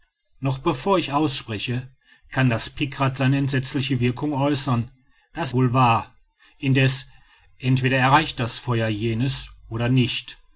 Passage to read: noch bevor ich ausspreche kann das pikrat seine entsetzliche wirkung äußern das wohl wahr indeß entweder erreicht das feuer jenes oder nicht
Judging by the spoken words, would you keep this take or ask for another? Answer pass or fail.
pass